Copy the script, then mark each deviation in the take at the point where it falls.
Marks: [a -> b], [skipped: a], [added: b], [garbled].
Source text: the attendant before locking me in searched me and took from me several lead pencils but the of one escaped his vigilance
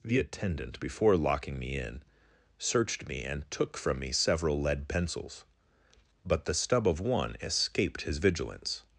the attendant before locking me in searched me and took from me several lead pencils but the [added: stub] of one escaped his vigilance